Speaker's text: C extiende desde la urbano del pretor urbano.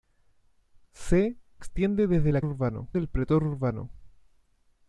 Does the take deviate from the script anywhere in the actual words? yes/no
no